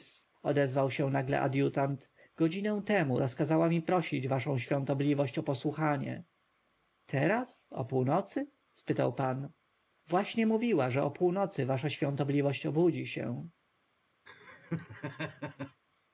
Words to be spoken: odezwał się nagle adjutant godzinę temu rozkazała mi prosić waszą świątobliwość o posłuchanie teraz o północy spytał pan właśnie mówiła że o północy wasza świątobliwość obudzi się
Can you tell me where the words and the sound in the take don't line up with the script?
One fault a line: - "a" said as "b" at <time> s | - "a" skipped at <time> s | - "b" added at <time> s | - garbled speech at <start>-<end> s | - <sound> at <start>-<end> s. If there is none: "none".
- laugh at 14.3-15.8 s